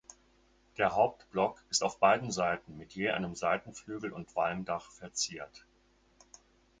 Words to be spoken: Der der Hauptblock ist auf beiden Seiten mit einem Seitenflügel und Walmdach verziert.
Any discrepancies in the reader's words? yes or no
yes